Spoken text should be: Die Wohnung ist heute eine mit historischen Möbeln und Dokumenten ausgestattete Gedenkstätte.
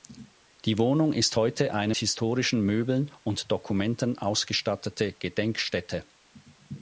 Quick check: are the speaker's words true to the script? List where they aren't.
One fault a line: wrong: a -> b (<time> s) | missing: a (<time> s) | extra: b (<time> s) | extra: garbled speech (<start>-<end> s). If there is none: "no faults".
missing: mit (1.9 s)